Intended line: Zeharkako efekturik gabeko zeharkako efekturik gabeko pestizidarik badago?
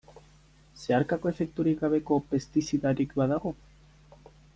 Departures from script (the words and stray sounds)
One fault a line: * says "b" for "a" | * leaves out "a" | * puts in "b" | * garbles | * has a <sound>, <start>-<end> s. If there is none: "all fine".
* leaves out "zeharkako efekturik gabeko"